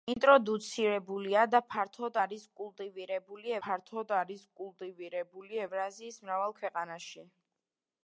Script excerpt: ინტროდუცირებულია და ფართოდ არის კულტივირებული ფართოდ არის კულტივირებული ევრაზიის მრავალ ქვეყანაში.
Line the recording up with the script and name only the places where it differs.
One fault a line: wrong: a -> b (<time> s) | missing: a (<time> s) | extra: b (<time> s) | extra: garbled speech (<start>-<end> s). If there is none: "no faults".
no faults